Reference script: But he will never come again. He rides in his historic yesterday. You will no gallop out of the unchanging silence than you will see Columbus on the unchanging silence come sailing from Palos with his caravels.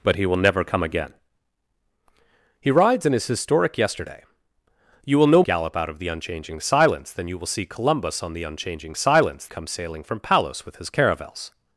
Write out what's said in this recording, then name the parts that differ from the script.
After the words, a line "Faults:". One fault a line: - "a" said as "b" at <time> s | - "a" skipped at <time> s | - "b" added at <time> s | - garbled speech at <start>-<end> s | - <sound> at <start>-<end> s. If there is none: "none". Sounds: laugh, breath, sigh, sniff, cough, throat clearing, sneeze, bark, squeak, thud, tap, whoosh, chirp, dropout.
But he will never come again. He rides in his historic yesterday. You will no gallop out of the unchanging silence than you will see Columbus on the unchanging silence come sailing from Palos with his caravels.
Faults:
none